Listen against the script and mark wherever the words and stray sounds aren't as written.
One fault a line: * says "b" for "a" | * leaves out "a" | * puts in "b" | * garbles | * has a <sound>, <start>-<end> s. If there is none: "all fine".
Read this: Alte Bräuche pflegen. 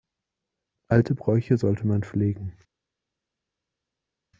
* puts in "sollte man"